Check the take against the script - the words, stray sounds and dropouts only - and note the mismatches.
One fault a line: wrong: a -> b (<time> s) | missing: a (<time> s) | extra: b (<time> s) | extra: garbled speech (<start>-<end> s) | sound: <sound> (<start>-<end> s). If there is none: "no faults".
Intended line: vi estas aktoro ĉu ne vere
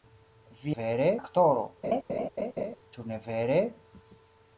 wrong: estas -> vere (0.8 s)
sound: laugh (1.8-2.8 s)